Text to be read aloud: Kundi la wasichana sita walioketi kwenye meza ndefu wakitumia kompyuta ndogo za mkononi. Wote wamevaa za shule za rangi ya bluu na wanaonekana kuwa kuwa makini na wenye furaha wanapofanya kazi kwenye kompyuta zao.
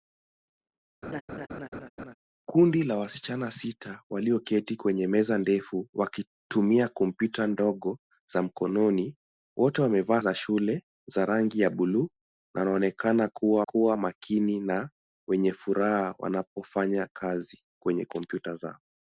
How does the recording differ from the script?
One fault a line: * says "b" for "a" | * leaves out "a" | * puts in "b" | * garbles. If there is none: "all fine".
all fine